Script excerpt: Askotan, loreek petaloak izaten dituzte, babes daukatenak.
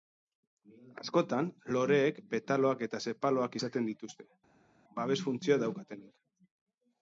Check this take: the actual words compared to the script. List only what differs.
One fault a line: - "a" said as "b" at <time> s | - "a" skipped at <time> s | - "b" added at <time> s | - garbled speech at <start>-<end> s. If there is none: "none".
- "eta sepaloak" added at 2.9 s
- "funtzioa" added at 5.3 s